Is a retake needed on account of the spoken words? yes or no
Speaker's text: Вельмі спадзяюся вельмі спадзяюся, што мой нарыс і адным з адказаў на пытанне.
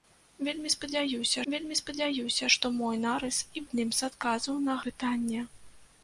no